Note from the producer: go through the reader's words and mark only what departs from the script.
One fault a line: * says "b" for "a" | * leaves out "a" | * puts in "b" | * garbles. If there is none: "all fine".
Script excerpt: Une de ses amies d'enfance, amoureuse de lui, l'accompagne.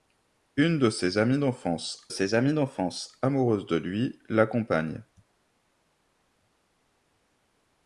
* puts in "ses amies d'enfance"